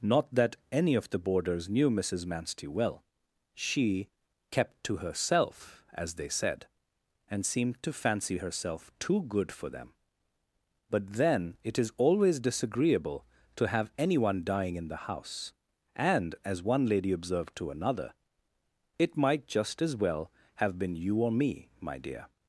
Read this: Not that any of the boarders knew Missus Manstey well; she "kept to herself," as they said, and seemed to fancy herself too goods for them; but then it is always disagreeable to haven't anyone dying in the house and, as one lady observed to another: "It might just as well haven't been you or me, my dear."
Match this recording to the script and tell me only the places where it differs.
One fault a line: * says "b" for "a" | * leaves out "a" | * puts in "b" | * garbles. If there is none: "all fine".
* says "good" for "goods"
* says "have" for "haven't"
* says "have" for "haven't"